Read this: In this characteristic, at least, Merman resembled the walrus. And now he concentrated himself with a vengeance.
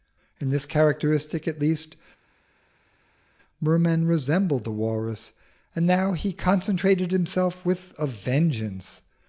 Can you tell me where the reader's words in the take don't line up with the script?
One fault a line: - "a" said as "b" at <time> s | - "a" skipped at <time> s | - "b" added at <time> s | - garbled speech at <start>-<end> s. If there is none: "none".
none